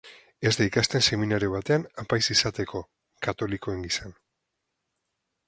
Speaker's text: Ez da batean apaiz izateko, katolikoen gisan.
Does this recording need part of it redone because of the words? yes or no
yes